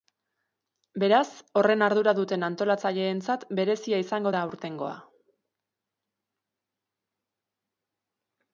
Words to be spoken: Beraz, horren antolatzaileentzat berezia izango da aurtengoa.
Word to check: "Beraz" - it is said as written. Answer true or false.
true